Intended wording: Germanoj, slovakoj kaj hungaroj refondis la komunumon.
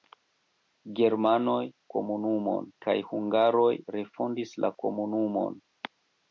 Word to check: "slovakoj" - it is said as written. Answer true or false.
false